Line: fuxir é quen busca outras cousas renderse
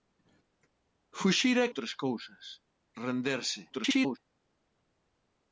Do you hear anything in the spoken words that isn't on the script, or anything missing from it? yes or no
yes